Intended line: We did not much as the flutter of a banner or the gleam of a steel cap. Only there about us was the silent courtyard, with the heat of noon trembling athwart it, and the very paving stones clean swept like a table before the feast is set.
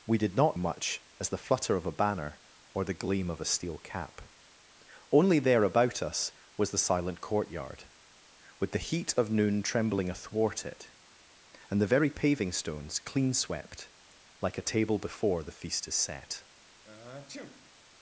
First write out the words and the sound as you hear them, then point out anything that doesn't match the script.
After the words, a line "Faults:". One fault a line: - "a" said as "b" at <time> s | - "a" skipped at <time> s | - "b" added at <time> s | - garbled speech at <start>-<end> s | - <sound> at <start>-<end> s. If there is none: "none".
We did not much as the flutter of a banner or the gleam of a steel cap. Only there about us was the silent courtyard, with the heat of noon trembling athwart it, and the very paving stones clean swept like a table before the feast is set.
Faults:
- sniff at 16.8-17.7 s